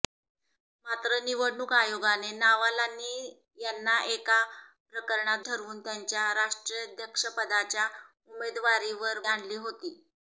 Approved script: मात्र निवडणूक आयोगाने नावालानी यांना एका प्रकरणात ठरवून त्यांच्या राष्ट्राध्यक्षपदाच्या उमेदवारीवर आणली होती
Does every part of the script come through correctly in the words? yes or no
yes